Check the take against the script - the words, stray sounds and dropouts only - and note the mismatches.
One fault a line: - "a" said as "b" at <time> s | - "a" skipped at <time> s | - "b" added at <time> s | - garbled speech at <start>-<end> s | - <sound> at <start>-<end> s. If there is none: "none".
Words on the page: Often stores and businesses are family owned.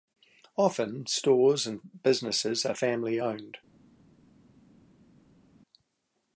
none